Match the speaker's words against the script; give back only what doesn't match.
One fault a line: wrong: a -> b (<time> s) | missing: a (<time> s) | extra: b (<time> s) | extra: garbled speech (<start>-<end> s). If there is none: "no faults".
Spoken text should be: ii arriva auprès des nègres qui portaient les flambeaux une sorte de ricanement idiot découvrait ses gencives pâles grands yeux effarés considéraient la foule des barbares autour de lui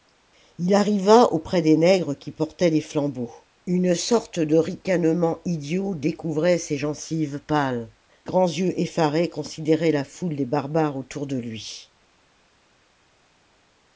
no faults